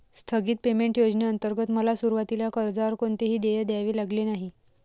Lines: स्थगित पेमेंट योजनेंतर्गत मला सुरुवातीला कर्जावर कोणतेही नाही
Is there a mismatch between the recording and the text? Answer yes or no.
yes